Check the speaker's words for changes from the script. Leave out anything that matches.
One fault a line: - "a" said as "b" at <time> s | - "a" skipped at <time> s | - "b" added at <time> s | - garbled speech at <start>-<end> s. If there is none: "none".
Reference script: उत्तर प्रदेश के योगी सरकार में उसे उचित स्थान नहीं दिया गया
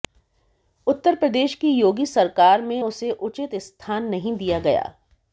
- "के" said as "की" at 1.6 s